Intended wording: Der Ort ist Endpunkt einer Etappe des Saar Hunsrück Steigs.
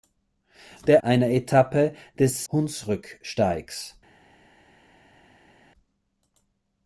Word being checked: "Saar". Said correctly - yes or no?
no